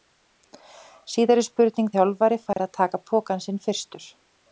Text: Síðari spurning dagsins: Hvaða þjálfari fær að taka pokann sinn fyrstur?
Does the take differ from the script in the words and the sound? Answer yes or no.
yes